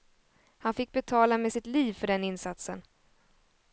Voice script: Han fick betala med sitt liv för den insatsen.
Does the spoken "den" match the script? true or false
true